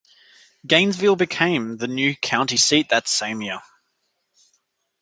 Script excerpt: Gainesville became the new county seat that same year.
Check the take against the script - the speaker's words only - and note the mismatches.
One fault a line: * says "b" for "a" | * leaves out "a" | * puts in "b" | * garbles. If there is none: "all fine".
all fine